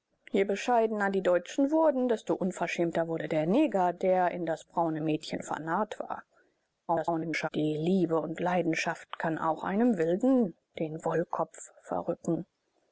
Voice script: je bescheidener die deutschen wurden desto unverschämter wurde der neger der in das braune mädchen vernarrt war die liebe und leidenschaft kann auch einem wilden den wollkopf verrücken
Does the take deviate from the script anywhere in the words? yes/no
yes